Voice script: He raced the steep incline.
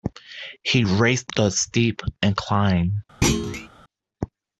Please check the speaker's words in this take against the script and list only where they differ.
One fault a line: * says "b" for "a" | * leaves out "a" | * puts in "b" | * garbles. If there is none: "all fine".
all fine